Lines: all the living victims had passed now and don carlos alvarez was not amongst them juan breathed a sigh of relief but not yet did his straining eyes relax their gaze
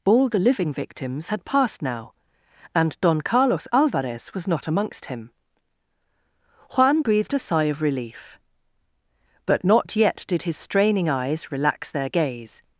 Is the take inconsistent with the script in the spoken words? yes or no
yes